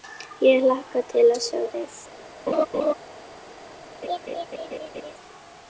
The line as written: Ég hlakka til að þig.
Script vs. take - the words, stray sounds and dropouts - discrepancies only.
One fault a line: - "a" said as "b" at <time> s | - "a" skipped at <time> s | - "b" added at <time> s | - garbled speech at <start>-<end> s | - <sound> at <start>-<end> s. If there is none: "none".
- "sjá" added at 1.5 s
- laugh at 2.5-2.9 s
- laugh at 4.0-5.1 s